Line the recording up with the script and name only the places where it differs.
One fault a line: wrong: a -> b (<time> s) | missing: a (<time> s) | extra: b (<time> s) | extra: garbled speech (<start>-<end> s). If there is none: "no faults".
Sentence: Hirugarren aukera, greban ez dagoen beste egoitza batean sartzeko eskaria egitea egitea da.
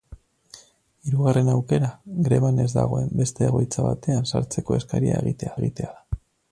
no faults